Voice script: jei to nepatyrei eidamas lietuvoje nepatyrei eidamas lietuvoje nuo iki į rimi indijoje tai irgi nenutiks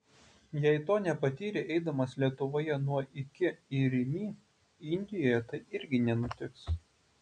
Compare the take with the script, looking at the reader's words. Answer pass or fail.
fail